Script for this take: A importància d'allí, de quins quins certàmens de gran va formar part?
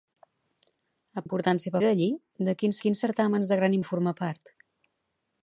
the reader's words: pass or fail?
pass